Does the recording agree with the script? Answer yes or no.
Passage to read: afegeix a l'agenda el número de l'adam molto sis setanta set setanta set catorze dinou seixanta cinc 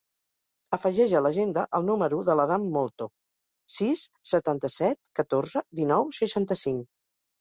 no